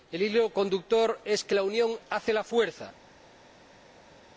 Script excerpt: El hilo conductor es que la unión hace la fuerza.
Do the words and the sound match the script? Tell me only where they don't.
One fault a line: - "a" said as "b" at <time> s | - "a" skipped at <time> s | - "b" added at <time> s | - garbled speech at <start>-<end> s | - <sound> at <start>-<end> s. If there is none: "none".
none